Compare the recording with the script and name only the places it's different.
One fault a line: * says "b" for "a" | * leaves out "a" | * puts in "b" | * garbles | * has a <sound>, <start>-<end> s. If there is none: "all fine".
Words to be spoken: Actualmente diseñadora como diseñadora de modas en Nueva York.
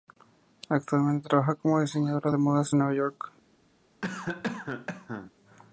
* says "trabaja" for "diseñadora"
* has a cough, 4.0-5.3 s